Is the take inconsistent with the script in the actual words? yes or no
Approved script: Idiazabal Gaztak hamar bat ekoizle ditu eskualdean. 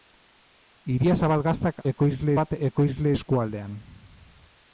yes